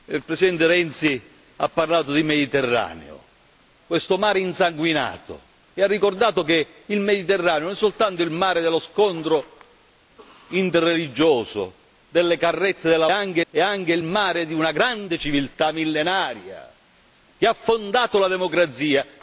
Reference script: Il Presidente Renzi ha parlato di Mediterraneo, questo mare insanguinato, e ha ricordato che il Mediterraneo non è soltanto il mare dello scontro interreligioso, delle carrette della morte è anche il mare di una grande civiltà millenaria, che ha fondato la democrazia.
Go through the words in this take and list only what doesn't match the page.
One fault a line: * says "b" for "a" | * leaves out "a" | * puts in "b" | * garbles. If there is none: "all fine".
* says "anche" for "morte"